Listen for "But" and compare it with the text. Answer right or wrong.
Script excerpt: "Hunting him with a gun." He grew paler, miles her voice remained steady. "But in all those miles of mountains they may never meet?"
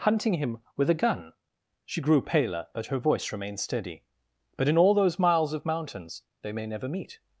right